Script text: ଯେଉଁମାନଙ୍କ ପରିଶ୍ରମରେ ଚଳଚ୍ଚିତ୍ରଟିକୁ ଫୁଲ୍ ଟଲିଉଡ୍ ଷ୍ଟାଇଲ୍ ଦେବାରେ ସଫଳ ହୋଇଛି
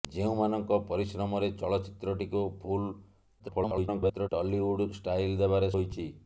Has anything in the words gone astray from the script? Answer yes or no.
yes